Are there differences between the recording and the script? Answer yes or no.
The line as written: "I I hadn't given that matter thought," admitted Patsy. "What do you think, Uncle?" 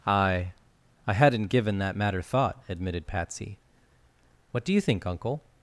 no